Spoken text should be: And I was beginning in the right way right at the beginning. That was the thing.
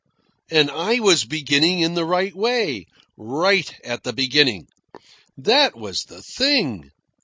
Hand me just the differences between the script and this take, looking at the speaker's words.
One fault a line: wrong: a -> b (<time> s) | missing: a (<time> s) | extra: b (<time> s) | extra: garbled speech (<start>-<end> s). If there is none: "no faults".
no faults